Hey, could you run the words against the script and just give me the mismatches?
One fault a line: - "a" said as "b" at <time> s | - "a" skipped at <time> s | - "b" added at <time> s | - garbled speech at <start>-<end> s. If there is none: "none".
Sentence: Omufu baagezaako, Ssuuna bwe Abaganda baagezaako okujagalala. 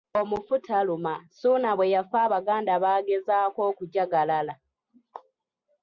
- "baagezaako" said as "taluma" at 0.7 s
- "yafa" added at 1.9 s